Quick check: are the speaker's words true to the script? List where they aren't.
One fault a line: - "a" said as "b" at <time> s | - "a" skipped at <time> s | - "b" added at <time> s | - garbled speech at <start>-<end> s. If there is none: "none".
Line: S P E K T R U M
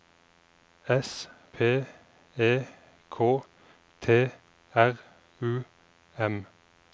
none